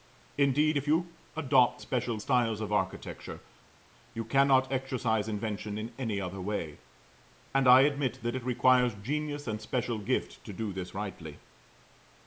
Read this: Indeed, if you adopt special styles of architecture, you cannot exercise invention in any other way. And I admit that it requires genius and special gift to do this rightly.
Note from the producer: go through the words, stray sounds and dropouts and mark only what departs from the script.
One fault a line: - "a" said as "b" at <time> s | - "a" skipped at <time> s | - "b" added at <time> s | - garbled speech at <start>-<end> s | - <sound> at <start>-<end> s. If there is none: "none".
none